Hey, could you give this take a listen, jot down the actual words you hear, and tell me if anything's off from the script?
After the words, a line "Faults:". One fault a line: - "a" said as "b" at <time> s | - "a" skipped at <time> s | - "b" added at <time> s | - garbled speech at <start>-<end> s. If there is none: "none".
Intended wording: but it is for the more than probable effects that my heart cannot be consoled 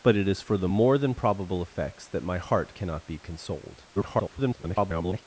but it is for the more than probable effects that my heart cannot be consoled [garbled]
Faults:
- garbled speech at 4.0-5.2 s